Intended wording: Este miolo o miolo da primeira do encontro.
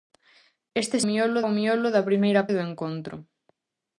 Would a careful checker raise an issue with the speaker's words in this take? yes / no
no